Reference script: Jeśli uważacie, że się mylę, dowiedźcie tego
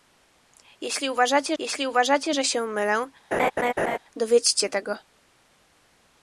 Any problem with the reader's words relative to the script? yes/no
yes